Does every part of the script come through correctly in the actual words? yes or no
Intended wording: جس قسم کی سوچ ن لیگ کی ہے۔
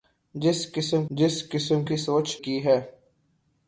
no